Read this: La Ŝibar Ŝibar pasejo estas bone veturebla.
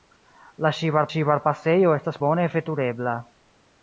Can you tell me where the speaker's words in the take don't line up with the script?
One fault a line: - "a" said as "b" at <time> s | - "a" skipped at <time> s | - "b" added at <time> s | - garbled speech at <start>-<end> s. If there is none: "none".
none